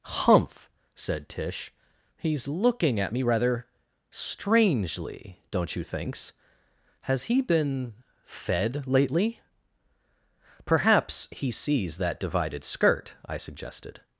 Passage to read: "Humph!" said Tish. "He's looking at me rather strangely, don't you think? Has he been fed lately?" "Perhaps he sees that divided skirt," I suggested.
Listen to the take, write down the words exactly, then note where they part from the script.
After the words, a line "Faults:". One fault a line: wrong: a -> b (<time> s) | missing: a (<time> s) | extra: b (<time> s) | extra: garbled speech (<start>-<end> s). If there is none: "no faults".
"Humph!" said Tish. "He's looking at me rather strangely, don't you thinks? Has he been fed lately?" "Perhaps he sees that divided skirt," I suggested.
Faults:
wrong: think -> thinks (5.8 s)